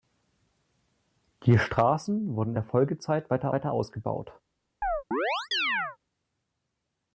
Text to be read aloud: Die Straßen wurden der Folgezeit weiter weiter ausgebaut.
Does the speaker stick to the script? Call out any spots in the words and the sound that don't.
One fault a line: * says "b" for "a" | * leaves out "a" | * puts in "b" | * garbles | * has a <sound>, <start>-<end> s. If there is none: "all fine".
* has a chirp, 4.8-6.0 s